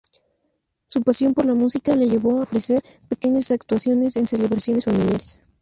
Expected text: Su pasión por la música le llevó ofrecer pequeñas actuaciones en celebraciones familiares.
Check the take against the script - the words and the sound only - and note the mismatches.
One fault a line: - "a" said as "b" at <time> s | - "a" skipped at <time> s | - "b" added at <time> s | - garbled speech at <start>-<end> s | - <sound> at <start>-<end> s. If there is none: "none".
none